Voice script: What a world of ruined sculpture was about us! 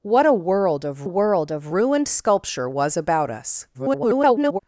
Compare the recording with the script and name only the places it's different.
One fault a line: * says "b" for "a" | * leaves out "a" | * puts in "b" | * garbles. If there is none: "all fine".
* puts in "world of"
* garbles